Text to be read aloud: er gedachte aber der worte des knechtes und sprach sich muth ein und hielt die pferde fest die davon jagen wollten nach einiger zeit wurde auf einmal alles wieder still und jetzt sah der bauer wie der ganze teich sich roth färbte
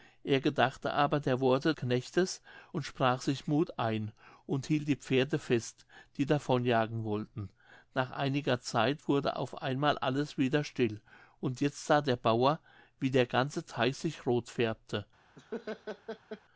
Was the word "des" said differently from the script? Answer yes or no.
yes